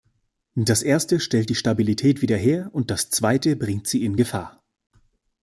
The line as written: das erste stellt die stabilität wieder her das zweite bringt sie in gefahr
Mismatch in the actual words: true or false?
true